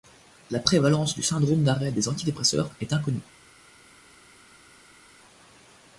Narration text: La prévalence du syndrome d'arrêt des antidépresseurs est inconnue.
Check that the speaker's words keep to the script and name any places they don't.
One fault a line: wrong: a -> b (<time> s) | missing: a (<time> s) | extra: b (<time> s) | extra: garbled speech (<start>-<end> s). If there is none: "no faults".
no faults